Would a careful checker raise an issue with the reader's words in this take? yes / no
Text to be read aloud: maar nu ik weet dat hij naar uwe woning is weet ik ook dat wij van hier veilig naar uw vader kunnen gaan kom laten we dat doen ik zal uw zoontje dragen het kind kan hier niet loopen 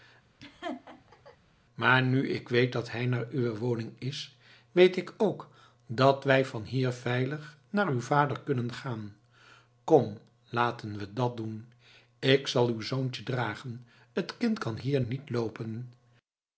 no